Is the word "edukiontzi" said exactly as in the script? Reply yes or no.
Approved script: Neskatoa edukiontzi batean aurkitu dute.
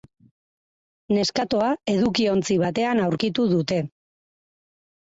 yes